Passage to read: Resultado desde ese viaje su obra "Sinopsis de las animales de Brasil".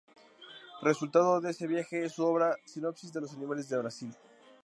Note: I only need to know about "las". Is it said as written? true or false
false